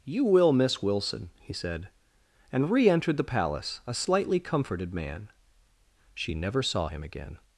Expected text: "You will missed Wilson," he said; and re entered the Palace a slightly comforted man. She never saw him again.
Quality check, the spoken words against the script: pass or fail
fail